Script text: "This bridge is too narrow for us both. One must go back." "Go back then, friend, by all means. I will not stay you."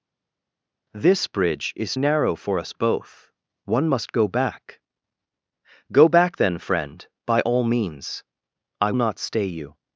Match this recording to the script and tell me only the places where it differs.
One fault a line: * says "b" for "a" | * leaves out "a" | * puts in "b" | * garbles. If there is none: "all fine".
* leaves out "too"
* leaves out "will"